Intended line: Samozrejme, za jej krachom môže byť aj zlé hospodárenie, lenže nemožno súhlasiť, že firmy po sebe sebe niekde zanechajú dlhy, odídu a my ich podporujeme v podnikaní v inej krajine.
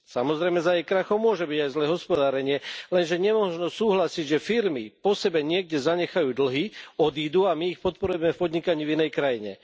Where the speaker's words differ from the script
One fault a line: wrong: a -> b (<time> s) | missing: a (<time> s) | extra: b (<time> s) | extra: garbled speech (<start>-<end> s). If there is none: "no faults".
missing: sebe (5.5 s)